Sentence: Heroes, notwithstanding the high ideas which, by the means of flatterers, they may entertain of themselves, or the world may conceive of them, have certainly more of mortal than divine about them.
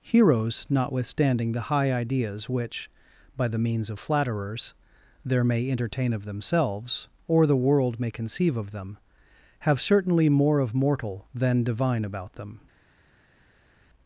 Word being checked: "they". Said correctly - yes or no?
no